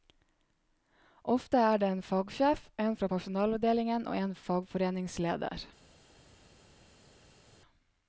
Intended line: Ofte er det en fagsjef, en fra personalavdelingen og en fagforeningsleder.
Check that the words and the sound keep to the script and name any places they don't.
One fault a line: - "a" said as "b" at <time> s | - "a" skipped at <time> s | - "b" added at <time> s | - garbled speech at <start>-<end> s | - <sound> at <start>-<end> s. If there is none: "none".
none